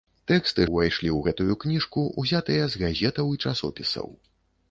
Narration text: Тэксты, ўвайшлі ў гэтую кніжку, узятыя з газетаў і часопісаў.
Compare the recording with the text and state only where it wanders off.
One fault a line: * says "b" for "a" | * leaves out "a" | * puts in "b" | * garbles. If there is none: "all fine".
all fine